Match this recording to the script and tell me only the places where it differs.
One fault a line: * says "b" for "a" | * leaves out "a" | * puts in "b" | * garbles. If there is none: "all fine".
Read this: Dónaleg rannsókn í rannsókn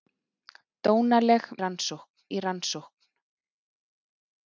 all fine